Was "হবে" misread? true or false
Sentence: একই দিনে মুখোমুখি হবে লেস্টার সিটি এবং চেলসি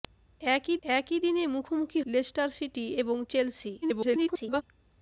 true